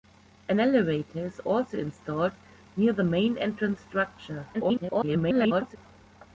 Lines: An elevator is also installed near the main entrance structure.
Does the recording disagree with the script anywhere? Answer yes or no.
yes